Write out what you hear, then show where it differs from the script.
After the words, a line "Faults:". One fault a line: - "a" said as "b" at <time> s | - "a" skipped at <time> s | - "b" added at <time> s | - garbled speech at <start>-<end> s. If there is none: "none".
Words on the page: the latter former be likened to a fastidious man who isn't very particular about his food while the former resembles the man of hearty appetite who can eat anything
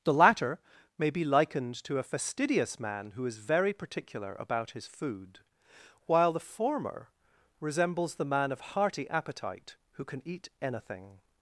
the latter may be likened to a fastidious man who is very particular about his food while the former resembles the man of hearty appetite who can eat anything
Faults:
- "former" said as "may" at 1.0 s
- "isn't" said as "is" at 3.3 s